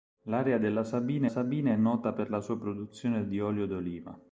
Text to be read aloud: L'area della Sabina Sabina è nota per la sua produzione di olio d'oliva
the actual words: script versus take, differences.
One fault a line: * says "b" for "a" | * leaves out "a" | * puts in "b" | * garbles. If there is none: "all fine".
all fine